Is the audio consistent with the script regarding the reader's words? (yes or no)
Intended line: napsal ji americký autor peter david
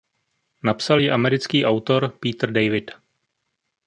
yes